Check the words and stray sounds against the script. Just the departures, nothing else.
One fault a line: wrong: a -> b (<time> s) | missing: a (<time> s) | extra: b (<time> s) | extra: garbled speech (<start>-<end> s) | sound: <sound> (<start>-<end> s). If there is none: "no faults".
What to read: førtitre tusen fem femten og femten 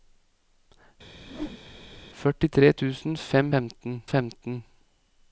sound: whoosh (1.2-2.0 s)